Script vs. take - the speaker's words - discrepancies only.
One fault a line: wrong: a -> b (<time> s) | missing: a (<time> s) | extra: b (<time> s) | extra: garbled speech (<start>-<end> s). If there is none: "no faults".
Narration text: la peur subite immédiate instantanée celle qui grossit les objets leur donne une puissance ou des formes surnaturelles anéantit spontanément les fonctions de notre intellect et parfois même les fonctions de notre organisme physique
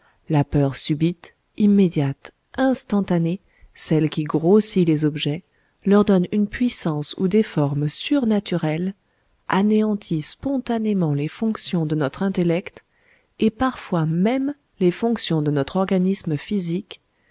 no faults